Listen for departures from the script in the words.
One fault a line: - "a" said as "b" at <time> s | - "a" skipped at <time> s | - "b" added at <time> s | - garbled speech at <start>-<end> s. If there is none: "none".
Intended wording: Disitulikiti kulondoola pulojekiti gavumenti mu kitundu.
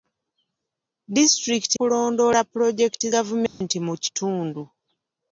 none